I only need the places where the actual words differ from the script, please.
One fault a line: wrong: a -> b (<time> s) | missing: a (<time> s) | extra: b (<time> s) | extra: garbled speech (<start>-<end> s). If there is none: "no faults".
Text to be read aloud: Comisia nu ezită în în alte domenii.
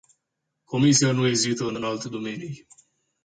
no faults